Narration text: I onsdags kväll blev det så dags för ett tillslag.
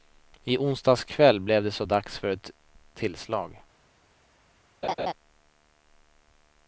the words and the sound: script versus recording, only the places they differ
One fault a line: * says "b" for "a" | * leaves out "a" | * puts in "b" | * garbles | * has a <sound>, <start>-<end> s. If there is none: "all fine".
* has a laugh, 4.8-5.1 s